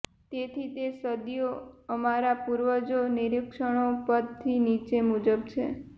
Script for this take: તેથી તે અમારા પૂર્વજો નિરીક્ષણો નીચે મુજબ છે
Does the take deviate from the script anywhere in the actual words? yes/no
yes